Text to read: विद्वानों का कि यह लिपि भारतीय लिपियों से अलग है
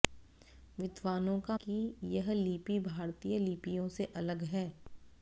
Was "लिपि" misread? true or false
false